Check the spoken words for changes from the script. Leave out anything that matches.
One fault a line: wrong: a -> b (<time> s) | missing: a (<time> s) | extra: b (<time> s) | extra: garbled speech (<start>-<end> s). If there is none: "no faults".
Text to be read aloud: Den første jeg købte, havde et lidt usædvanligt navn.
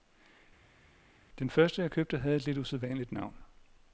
no faults